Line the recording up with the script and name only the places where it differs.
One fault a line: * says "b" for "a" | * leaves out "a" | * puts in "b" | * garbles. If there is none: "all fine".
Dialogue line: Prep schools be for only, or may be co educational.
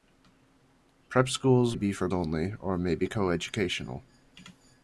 all fine